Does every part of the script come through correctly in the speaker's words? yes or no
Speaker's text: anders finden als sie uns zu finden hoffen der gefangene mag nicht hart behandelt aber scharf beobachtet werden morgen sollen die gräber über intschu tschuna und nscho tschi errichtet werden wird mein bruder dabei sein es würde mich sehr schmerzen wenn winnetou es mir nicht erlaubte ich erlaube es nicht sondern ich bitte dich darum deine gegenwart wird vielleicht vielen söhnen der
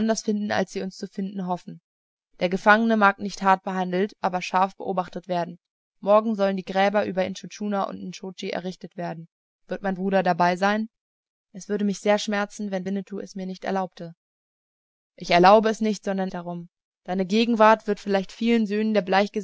no